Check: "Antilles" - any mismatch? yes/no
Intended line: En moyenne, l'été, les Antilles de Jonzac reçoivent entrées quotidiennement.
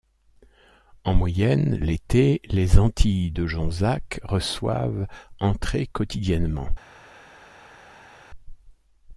no